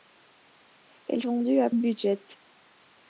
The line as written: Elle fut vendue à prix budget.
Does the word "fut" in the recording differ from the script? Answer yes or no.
yes